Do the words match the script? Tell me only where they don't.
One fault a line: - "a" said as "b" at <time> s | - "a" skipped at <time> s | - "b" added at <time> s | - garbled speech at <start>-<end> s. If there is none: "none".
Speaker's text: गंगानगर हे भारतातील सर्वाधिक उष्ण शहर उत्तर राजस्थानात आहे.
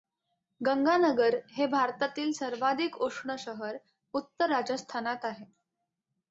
none